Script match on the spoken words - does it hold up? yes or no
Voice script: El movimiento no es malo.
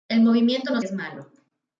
yes